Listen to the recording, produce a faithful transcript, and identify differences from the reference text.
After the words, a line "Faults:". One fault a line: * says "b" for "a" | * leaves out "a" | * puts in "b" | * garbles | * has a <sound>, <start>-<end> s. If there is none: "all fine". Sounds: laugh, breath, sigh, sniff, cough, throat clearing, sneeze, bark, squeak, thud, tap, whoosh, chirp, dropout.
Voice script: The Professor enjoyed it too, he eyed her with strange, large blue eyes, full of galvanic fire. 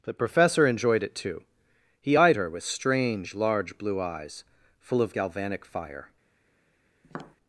The Professor enjoyed it too, he eyed her with strange, large blue eyes, full of galvanic fire.
Faults:
* has a tap, 7.0-7.4 s